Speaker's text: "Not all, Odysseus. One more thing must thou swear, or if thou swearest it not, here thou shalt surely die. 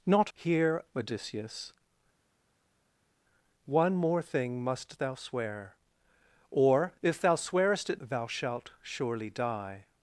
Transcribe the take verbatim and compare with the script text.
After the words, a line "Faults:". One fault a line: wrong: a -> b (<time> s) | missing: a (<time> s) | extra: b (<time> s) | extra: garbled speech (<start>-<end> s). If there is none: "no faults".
"Not here, Odysseus. One more thing must thou swear, or if thou swearest it thou shalt surely die.
Faults:
wrong: all -> here (0.3 s)
missing: not here (8.0 s)